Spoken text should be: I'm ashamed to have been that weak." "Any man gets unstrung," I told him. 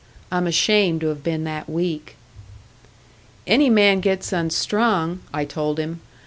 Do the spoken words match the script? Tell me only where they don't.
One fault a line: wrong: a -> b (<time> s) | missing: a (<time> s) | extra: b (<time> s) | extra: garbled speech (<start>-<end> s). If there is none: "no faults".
no faults